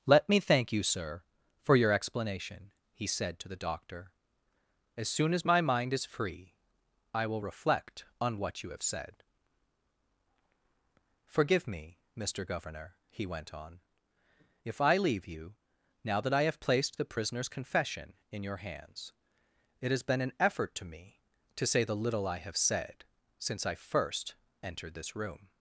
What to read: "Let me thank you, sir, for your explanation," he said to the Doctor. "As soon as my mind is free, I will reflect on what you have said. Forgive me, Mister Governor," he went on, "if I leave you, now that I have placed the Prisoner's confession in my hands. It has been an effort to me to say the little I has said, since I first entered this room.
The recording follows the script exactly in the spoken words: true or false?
false